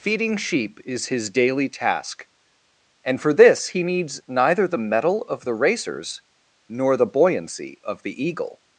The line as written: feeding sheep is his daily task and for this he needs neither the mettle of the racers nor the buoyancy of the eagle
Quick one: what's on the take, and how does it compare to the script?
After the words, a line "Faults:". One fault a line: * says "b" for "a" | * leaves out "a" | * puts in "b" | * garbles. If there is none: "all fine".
feeding sheep is his daily task and for this he needs neither the mettle of the racers nor the buoyancy of the eagle
Faults:
all fine